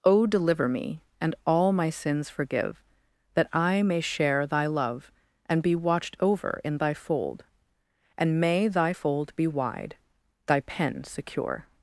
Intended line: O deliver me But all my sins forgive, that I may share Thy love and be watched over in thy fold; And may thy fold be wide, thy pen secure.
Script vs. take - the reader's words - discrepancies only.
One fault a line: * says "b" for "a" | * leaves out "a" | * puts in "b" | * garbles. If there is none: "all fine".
* says "And" for "But"